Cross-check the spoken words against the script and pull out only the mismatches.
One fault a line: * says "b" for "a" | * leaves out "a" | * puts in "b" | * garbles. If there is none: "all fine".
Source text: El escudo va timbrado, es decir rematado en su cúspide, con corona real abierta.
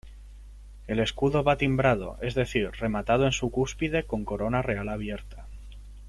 all fine